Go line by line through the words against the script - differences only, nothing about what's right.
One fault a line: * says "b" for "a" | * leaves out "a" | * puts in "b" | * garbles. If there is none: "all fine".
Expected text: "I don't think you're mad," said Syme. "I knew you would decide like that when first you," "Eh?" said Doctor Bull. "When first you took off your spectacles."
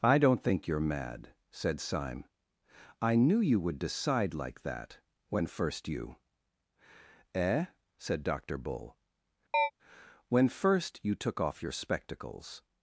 all fine